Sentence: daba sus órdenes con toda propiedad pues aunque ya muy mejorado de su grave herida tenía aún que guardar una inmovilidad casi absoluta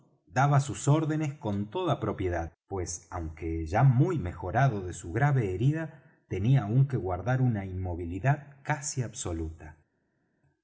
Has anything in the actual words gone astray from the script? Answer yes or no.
no